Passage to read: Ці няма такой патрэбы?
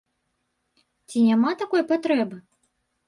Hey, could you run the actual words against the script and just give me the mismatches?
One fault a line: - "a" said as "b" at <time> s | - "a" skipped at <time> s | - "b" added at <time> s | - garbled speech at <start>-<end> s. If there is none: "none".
none